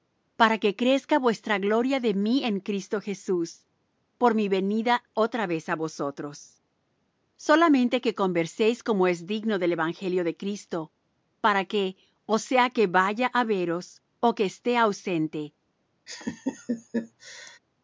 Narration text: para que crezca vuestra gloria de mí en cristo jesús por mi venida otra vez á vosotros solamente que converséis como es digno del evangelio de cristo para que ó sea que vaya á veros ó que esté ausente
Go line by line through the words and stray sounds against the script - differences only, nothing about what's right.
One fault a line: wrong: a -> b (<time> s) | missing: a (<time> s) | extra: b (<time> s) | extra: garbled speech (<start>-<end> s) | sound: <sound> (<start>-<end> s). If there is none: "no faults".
sound: laugh (16.1-17.6 s)